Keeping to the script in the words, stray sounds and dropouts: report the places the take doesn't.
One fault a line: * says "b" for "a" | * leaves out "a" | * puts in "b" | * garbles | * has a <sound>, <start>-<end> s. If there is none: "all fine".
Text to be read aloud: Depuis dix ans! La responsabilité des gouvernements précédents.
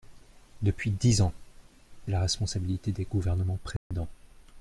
* has a dropout, 3.8-3.9 s